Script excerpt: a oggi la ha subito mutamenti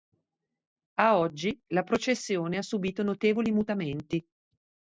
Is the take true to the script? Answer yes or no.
no